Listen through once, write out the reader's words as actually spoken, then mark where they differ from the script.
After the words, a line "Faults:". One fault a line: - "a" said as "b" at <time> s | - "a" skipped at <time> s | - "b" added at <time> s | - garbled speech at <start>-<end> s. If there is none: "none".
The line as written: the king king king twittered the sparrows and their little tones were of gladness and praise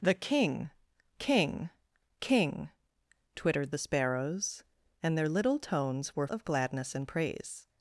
the king king king twittered the sparrows and their little tones were of gladness and praise
Faults:
none